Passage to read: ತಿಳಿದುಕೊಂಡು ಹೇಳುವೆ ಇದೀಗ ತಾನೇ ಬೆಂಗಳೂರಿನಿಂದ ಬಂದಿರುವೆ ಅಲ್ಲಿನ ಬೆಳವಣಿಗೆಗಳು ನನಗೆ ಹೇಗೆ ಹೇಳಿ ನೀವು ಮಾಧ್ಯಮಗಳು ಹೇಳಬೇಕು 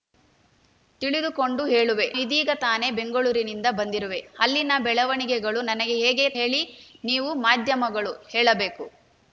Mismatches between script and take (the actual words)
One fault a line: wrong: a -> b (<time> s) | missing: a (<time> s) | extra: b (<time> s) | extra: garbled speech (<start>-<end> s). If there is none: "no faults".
no faults